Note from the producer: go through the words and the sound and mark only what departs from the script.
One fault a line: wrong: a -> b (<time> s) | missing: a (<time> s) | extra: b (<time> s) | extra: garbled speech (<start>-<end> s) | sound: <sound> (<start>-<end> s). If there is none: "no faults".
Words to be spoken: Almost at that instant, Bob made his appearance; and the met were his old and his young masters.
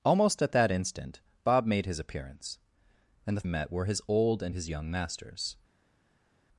no faults